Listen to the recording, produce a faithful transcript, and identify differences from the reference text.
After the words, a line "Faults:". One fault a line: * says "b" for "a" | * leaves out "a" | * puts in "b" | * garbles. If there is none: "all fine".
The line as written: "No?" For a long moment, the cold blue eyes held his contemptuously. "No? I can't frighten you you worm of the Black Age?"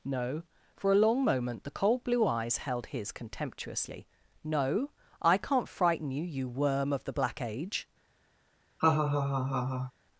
"No?" For a long moment, the cold blue eyes held his contemptuously. "No? I can't frighten you you worm of the Black Age?"
Faults:
all fine